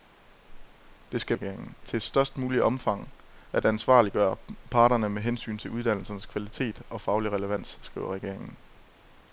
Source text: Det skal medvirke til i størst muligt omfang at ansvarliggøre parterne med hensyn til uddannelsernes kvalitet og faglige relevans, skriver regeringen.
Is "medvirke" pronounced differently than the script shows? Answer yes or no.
yes